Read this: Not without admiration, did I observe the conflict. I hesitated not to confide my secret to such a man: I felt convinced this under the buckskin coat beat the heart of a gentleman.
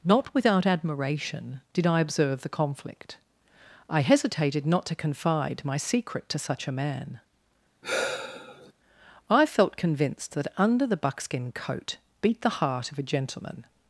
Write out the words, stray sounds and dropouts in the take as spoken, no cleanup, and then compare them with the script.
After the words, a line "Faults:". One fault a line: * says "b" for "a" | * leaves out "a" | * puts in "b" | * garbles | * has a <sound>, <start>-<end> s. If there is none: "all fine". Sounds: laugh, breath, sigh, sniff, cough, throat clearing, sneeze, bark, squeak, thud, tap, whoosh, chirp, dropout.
Not without admiration, did I observe the conflict. I hesitated not to confide my secret to such a man: I felt convinced that under the buckskin coat beat the heart of a gentleman.
Faults:
* has a sigh, 7.8-8.7 s
* says "that" for "this"